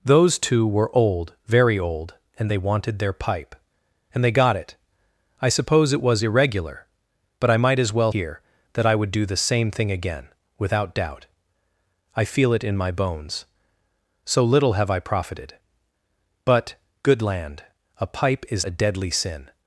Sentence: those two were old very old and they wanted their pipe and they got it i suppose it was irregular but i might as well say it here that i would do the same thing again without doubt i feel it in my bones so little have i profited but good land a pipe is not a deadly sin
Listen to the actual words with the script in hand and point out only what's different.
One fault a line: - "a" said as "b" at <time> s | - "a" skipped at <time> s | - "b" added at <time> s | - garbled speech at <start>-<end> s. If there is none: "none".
- "say it" skipped at 8.1 s
- "not" skipped at 18.7 s